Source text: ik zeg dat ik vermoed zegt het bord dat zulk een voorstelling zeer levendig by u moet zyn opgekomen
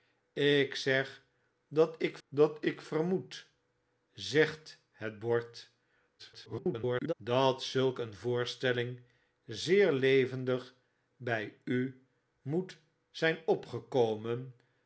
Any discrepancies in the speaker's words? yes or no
yes